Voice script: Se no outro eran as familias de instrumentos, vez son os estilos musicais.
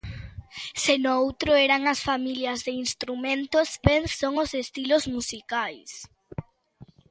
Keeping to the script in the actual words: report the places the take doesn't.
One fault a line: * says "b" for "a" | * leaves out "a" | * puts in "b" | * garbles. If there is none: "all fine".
all fine